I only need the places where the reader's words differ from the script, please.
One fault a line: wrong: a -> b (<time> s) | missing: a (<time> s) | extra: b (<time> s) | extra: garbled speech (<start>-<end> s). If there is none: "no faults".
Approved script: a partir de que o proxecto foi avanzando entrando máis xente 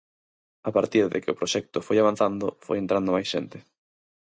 extra: foi (2.6 s)